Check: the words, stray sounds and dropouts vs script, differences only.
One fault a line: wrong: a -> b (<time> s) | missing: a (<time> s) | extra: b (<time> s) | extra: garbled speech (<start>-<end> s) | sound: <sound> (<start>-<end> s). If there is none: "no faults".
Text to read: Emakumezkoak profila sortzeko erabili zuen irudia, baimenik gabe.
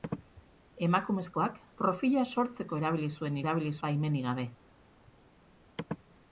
wrong: irudia -> erabili (3.4 s)